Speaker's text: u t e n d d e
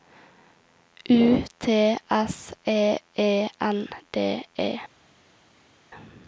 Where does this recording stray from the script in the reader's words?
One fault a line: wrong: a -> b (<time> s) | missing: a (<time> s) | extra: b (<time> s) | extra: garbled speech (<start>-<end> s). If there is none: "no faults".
extra: s (2.1 s)
extra: e (3.1 s)
missing: d (4.4 s)